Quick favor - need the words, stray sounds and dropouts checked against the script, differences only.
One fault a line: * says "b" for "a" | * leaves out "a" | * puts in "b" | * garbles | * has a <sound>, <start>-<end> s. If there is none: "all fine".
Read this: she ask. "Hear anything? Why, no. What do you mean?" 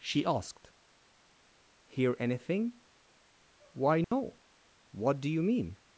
* says "asked" for "ask"
* has a dropout, 4.0-4.1 s